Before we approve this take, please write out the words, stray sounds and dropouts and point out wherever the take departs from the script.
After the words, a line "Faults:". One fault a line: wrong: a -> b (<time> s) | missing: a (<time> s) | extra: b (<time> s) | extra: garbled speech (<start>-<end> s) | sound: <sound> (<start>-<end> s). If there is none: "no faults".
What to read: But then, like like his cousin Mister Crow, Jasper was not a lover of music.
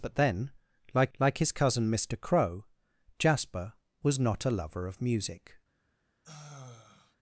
But then, like like his cousin Mister Crow, Jasper was not a lover of music.
Faults:
sound: sigh (6.2-7.2 s)